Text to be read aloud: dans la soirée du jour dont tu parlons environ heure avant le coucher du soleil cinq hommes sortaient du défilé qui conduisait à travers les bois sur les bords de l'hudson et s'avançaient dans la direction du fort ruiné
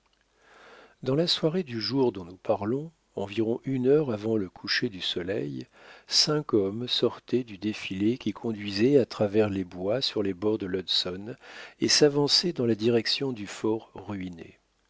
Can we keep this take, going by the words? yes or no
no